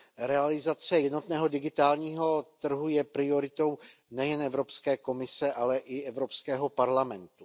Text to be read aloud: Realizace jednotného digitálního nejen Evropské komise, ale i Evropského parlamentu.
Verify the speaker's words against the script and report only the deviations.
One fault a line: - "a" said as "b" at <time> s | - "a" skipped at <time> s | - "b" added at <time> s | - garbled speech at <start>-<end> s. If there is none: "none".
- "trhu je prioritou" added at 2.6 s